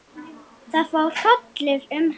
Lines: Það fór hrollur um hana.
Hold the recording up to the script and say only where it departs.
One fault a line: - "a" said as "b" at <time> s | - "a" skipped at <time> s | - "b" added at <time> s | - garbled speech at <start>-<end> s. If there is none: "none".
none